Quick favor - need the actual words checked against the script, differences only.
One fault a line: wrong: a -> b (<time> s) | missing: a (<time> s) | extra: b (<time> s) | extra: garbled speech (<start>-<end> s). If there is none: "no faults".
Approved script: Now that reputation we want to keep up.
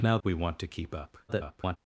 missing: that reputation (0.2 s)
extra: garbled speech (1.3-1.8 s)